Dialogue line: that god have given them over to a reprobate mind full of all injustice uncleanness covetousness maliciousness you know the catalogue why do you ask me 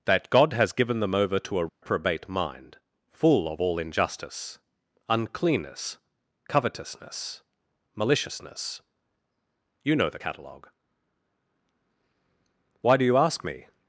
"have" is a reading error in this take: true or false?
true